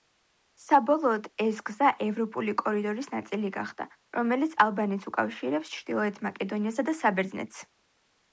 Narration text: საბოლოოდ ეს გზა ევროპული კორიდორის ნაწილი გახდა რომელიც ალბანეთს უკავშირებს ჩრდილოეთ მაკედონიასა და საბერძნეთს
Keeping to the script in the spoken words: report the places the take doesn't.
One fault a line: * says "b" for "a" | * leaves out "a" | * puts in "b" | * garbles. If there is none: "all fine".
all fine